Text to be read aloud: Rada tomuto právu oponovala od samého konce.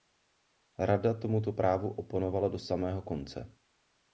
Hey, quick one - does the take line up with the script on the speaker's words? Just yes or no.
no